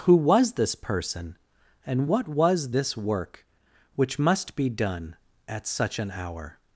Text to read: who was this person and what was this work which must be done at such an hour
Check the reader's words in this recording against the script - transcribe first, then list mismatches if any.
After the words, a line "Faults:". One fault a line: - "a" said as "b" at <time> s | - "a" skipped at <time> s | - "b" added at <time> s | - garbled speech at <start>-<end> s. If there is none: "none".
who was this person and what was this work which must be done at such an hour
Faults:
none